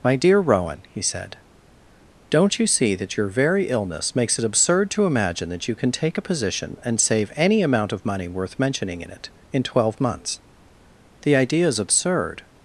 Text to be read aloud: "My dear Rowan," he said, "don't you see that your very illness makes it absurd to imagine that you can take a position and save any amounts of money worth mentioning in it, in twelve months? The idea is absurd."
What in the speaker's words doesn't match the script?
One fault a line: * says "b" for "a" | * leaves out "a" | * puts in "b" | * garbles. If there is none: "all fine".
* says "amount" for "amounts"